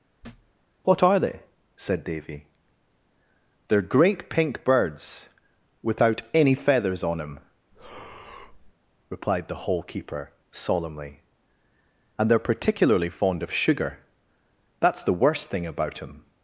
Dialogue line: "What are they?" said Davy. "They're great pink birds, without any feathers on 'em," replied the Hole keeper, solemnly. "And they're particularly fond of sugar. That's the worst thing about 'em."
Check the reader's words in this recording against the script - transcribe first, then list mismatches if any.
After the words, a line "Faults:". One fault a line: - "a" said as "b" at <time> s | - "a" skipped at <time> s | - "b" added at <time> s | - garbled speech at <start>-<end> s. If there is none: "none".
"What are they?" said Davy. "They're great pink birds, without any feathers on 'em," replied the Hole keeper, solemnly. "And they're particularly fond of sugar. That's the worst thing about 'em."
Faults:
none